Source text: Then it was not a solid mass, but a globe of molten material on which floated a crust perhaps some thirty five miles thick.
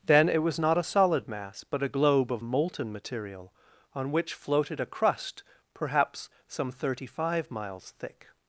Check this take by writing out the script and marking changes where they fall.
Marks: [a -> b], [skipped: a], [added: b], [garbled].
Then it was not a solid mass, but a globe of molten material on which floated a crust perhaps some thirty five miles thick.